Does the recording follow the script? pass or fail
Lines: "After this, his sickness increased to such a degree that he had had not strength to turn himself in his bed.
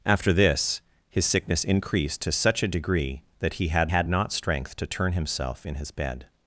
pass